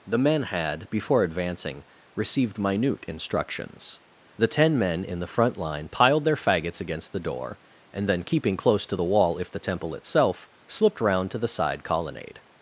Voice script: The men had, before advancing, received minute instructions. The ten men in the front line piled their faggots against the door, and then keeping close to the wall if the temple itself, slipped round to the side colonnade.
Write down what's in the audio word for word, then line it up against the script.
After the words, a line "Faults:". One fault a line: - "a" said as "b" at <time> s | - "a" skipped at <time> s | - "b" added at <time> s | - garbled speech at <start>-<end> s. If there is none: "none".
The men had, before advancing, received minute instructions. The ten men in the front line piled their faggots against the door, and then keeping close to the wall if the temple itself, slipped round to the side colonnade.
Faults:
none